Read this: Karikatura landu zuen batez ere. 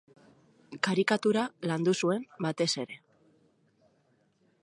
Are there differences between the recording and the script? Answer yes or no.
no